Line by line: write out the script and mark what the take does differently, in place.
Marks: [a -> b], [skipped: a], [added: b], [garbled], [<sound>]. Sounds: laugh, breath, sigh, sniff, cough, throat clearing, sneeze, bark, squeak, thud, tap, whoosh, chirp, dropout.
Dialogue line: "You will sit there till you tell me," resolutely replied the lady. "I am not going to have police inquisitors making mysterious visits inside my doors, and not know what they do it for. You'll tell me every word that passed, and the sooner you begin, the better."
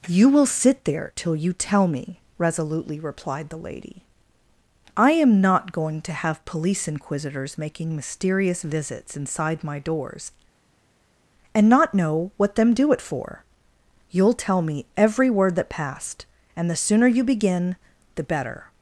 "You will sit there till you tell me," resolutely replied the lady. "I am not going to have police inquisitors making mysterious visits inside my doors, and not know what [they -> them] do it for. You'll tell me every word that passed, and the sooner you begin, the better."